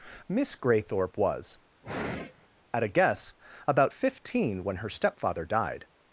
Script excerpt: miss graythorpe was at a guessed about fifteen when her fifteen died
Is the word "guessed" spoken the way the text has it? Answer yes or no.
no